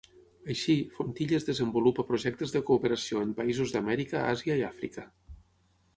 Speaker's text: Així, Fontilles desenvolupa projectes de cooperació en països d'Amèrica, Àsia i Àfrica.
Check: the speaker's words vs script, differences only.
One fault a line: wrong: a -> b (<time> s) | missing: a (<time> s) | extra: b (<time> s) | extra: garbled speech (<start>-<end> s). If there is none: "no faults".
no faults